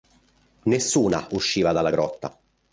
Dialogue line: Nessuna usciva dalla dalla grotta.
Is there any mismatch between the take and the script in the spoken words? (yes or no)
yes